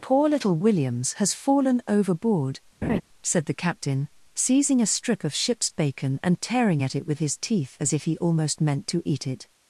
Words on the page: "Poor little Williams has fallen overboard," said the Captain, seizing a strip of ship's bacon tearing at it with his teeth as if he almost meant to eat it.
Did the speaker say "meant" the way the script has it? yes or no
yes